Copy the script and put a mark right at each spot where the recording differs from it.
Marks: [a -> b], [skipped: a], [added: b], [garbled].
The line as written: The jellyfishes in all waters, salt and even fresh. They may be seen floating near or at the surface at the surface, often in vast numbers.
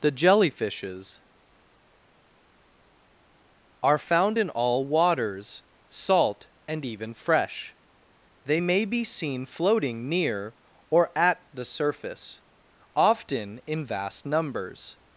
The jellyfishes [added: are found] in all waters, salt and even fresh. They may be seen floating near or at the surface [skipped: at the surface,] often in vast numbers.